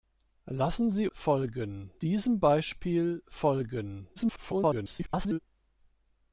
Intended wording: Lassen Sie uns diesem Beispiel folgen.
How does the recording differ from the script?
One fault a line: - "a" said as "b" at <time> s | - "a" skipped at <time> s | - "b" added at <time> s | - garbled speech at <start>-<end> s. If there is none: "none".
- "uns" said as "folgen" at 1.1 s
- garbled speech at 4.2-5.4 s